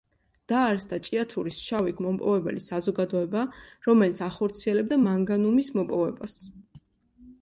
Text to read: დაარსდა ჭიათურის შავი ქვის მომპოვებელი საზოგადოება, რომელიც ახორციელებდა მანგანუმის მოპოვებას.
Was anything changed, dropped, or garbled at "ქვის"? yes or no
yes